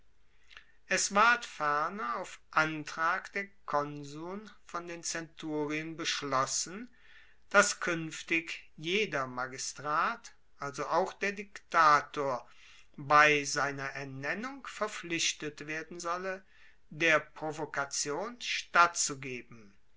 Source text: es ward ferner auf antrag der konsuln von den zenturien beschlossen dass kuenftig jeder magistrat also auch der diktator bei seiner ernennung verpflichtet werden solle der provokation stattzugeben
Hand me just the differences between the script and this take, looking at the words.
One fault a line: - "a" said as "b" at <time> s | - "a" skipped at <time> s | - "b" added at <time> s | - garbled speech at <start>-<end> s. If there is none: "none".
none